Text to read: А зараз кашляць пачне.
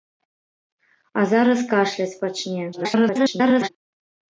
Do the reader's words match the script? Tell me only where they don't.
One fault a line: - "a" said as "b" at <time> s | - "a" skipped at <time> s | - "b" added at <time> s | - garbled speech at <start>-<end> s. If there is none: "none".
- garbled speech at 2.7-3.7 s